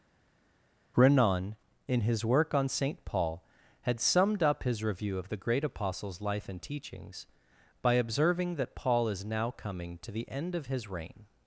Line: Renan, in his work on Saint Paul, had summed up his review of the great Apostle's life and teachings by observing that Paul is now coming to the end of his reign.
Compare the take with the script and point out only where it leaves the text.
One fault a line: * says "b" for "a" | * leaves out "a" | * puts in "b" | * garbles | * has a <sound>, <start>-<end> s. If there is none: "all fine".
all fine